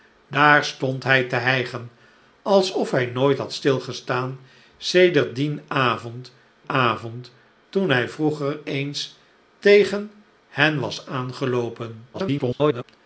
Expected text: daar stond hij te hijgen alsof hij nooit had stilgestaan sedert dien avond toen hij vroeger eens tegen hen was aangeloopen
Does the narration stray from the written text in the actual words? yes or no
yes